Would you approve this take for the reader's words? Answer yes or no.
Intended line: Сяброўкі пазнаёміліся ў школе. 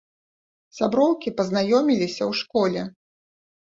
yes